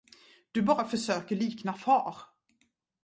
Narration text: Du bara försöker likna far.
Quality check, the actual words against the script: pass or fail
pass